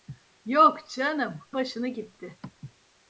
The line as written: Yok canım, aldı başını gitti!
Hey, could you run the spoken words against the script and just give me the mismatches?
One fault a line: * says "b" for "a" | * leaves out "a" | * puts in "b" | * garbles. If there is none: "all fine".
* leaves out "aldı"